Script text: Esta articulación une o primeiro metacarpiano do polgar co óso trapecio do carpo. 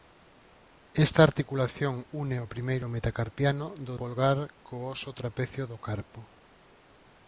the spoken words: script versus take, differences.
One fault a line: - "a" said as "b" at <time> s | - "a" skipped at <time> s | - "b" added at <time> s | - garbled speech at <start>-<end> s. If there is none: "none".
none